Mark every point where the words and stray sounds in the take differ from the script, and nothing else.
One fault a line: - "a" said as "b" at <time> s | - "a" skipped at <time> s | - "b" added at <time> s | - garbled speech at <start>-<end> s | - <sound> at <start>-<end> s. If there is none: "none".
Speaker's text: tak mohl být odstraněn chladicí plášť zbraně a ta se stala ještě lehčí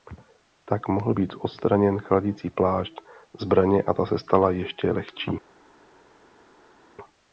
none